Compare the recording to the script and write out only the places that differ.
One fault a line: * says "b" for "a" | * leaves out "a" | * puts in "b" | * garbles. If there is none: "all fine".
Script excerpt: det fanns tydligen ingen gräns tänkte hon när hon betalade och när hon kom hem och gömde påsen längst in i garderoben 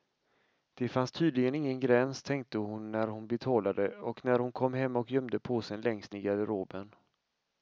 * leaves out "in"